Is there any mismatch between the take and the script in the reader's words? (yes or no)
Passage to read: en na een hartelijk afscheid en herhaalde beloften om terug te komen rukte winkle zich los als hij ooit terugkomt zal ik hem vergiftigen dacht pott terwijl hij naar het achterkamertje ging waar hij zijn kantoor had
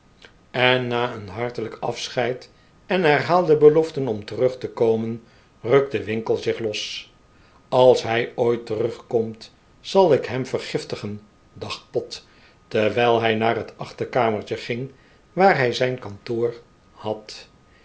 no